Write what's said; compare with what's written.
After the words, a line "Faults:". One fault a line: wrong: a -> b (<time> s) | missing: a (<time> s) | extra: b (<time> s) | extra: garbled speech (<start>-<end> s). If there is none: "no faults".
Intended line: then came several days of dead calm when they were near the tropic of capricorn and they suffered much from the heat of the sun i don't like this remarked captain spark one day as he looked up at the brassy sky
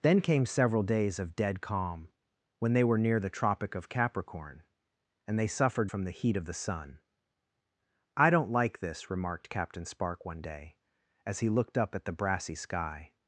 then came several days of dead calm when they were near the tropic of capricorn and they suffered from the heat of the sun i don't like this remarked captain spark one day as he looked up at the brassy sky
Faults:
missing: much (5.9 s)